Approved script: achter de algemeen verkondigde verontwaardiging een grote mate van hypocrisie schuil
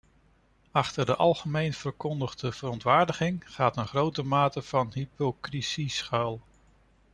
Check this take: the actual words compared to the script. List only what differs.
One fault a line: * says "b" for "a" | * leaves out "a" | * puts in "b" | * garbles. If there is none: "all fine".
* puts in "gaat"